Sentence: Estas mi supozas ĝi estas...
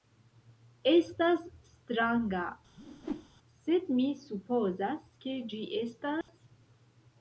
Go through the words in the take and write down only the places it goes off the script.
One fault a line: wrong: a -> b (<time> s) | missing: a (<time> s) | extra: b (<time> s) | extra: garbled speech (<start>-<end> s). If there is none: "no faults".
extra: stranga sed (1.7 s)
extra: ke (5.3 s)